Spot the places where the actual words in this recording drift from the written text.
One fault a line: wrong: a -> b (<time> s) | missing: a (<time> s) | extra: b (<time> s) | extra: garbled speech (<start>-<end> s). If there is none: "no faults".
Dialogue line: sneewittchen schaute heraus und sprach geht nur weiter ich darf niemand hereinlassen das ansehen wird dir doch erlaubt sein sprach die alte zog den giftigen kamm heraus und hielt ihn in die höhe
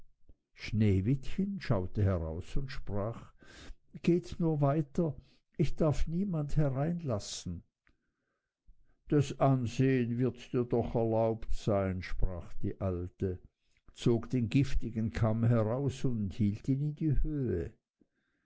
no faults